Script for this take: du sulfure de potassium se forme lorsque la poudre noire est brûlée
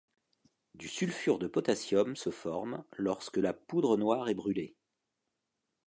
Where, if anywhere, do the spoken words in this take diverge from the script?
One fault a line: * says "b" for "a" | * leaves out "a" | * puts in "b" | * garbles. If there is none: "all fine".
all fine